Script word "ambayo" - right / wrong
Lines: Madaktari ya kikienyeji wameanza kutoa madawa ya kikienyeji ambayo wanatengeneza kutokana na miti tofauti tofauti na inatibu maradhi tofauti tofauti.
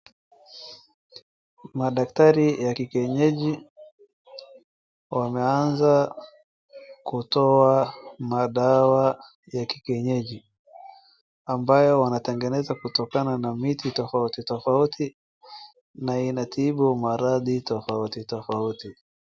right